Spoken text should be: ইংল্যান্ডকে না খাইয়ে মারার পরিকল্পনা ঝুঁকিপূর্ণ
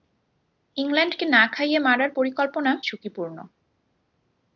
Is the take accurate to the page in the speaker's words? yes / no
yes